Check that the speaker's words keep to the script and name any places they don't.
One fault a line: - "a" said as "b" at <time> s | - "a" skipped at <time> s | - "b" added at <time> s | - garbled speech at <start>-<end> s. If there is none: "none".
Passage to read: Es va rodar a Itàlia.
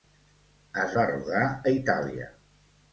none